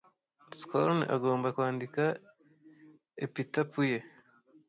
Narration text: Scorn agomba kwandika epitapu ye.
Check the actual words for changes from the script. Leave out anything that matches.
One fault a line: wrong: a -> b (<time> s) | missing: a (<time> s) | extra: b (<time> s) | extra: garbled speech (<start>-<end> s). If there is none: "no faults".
no faults